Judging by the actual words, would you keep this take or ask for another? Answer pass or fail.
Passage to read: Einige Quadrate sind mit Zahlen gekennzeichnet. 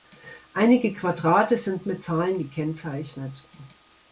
pass